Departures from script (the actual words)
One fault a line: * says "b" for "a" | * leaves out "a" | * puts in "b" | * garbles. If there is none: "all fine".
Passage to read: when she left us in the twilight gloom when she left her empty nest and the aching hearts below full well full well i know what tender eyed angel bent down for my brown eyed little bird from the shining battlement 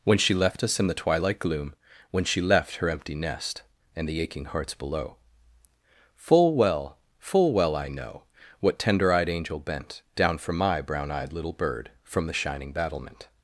all fine